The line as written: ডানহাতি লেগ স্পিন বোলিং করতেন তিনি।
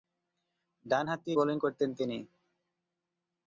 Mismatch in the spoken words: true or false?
true